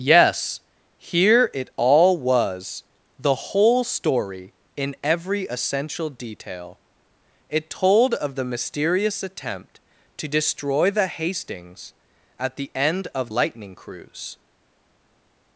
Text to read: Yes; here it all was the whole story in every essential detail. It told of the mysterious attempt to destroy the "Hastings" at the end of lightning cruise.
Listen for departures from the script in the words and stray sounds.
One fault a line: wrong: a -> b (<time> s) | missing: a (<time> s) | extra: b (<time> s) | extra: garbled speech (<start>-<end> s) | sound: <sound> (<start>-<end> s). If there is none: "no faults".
no faults